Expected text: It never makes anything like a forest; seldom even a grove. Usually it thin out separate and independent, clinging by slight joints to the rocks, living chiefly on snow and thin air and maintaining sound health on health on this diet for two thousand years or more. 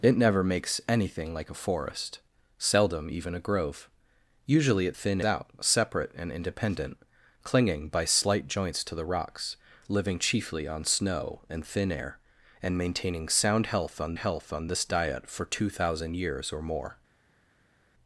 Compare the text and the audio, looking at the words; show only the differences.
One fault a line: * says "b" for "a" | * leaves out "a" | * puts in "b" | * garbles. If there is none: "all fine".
all fine